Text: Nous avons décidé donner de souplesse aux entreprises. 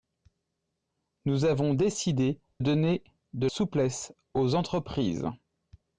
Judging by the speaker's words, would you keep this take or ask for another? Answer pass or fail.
pass